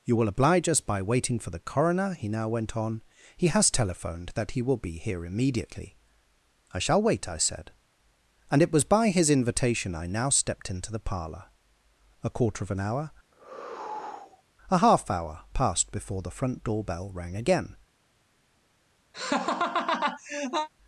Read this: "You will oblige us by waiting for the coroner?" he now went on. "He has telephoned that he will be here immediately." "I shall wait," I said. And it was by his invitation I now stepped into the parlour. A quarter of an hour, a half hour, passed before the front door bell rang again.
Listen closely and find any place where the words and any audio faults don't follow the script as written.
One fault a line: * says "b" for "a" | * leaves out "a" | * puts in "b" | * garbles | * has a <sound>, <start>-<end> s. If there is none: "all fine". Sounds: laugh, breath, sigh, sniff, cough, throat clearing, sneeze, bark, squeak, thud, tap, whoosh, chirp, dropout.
* has a sigh, 13.3-14.4 s
* has a laugh, 19.1-20.7 s